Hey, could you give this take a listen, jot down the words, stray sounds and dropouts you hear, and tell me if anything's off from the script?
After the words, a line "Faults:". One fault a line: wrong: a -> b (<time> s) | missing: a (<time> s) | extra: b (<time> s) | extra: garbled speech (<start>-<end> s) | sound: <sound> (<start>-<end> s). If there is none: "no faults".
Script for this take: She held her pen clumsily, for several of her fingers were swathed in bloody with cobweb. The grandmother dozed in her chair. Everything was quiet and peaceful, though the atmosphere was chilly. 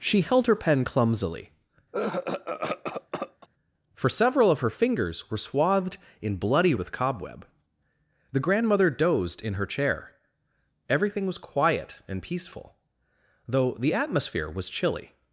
She held her pen clumsily, for several of her fingers were swathed in bloody with cobweb. The grandmother dozed in her chair. Everything was quiet and peaceful, though the atmosphere was chilly.
Faults:
sound: cough (1.9-3.5 s)